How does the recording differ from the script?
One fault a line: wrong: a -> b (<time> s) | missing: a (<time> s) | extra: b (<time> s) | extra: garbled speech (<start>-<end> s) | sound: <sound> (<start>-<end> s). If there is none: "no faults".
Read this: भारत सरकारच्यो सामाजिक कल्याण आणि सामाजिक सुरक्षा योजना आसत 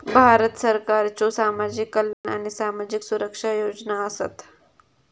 sound: dropout (2.1-2.2 s)